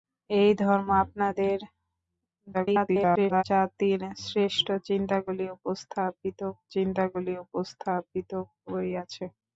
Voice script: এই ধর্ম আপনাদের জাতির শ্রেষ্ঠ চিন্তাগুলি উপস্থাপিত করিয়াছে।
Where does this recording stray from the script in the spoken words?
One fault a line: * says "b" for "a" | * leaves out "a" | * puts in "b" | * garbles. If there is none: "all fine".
* garbles
* puts in "চিন্তাগুলি উপস্থাপিত"